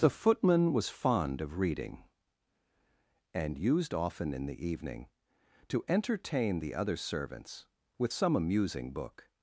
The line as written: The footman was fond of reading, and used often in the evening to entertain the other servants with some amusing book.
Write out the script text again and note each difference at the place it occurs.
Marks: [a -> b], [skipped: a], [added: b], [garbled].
The footman was fond of reading, and used often in the evening to entertain the other servants with some amusing book.